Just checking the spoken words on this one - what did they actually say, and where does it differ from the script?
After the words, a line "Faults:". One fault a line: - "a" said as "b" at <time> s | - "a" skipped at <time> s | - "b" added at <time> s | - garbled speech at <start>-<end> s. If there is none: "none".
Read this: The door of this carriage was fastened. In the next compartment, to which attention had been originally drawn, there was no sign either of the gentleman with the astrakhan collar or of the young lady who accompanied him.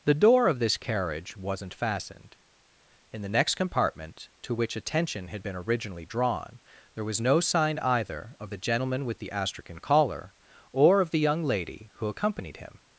The door of this carriage wasn't fastened. In the next compartment, to which attention had been originally drawn, there was no sign either of the gentleman with the astrakhan collar or of the young lady who accompanied him.
Faults:
- "was" said as "wasn't" at 1.3 s